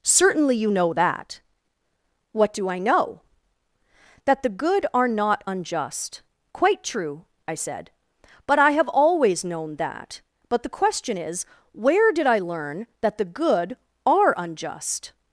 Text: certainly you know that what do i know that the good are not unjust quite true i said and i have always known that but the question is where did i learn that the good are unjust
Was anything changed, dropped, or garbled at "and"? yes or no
yes